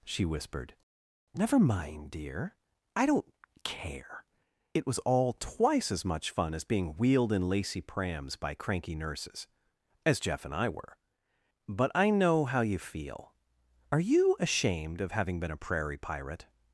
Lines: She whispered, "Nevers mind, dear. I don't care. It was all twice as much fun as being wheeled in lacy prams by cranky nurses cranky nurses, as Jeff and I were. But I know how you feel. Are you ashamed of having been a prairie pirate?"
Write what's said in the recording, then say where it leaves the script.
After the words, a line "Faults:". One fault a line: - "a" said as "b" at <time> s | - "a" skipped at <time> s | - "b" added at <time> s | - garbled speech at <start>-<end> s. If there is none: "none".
She whispered, "Never mind, dear. I don't care. It was all twice as much fun as being wheeled in lacy prams by cranky nurses, as Jeff and I were. But I know how you feel. Are you ashamed of having been a prairie pirate?"
Faults:
- "Nevers" said as "Never" at 1.3 s
- "cranky nurses" skipped at 9.5 s